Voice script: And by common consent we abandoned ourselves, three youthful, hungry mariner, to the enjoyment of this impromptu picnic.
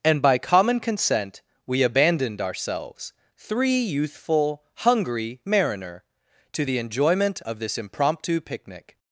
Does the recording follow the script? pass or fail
pass